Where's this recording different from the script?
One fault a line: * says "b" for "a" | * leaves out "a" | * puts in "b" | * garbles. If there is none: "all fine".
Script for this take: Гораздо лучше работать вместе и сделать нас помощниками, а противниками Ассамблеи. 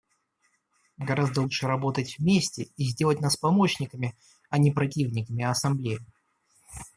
* puts in "не"